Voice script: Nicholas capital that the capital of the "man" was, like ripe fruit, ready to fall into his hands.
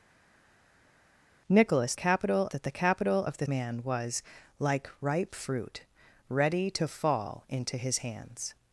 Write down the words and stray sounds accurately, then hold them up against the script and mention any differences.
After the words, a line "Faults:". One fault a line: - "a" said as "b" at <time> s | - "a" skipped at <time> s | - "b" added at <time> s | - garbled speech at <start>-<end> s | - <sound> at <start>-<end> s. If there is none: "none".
Nicholas capital that the capital of the "man" was, like ripe fruit, ready to fall into his hands.
Faults:
none